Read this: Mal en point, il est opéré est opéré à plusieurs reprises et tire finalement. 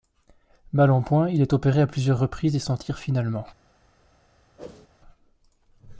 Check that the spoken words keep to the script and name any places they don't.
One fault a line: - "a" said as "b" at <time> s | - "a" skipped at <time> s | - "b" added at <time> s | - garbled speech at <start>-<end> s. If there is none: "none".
- "est opéré" skipped at 1.8 s
- "s'en" added at 2.6 s